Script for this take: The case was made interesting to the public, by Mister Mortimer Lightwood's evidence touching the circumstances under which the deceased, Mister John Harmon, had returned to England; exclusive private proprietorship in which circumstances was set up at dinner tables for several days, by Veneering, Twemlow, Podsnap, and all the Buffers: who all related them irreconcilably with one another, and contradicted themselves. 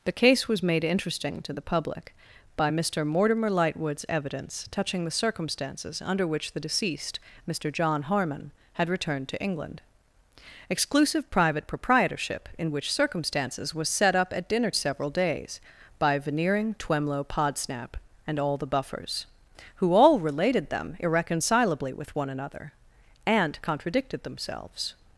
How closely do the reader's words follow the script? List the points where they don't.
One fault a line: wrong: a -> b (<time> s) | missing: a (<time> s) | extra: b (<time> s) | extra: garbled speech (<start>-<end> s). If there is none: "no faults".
missing: tables for (14.7 s)